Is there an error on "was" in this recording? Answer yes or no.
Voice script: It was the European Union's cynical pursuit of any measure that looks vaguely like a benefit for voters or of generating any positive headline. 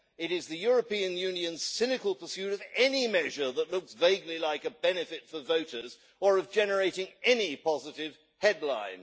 yes